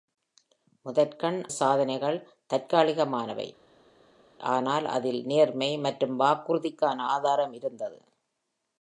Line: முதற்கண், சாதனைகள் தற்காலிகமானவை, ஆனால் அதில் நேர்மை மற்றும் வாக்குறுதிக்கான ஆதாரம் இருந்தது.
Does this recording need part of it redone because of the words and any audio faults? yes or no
no